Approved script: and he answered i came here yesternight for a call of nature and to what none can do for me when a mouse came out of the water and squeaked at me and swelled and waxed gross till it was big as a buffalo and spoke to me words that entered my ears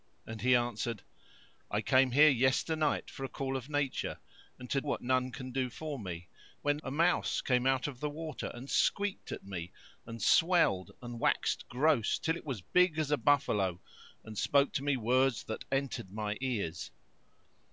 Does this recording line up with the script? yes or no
yes